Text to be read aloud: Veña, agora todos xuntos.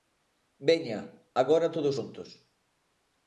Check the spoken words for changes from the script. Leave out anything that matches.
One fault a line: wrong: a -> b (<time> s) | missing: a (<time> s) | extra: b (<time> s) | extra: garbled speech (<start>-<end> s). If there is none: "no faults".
no faults